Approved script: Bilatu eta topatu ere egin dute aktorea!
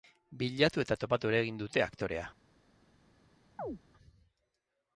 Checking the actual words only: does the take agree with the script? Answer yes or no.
yes